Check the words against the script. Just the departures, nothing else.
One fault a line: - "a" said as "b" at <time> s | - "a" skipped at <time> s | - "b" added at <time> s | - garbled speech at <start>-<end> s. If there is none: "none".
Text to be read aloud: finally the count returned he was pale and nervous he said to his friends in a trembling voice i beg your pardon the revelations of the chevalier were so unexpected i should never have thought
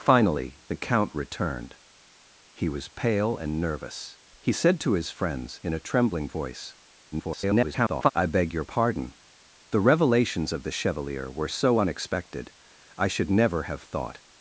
- garbled speech at 7.1-8.1 s